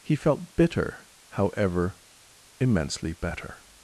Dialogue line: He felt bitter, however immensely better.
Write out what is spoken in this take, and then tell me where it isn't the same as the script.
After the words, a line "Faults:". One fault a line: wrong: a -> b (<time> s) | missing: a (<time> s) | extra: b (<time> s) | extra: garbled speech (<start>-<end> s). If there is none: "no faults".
He felt bitter, however immensely better.
Faults:
no faults